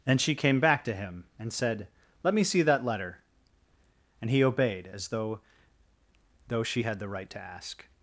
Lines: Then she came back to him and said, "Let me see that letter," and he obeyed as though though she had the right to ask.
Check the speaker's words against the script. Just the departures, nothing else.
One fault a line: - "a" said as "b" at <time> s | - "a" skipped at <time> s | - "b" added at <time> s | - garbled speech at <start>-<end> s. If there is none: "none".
none